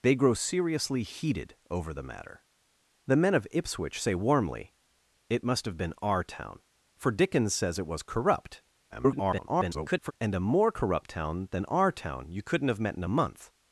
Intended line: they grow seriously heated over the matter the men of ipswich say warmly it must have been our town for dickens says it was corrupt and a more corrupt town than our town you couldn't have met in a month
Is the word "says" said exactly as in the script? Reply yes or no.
yes